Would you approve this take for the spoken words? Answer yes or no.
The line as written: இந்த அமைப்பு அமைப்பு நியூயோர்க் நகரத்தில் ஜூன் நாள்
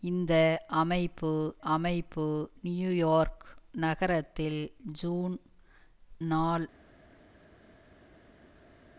yes